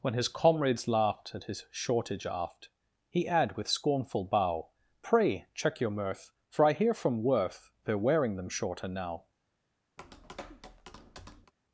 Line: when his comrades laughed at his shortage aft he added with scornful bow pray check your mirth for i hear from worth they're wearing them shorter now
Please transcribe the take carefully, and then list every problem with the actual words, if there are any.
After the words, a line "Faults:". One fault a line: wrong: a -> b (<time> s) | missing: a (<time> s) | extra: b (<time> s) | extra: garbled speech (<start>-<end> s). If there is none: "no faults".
when his comrades laughed at his shortage aft he add with scornful bow pray check your mirth for i hear from worth they're wearing them shorter now
Faults:
wrong: added -> add (3.3 s)